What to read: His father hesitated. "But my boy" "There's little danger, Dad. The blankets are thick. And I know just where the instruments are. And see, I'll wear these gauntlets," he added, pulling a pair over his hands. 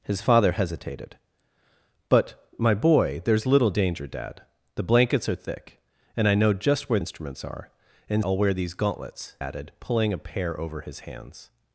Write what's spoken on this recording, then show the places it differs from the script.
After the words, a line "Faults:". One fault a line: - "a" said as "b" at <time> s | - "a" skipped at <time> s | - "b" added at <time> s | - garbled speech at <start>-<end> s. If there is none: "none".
His father hesitated. "But my boy" "There's little danger, Dad. The blankets are thick. And I know just where instruments are. And I'll wear these gauntlets," added, pulling a pair over his hands.
Faults:
- "the" skipped at 7.0 s
- "see" skipped at 8.3 s
- "he" skipped at 9.4 s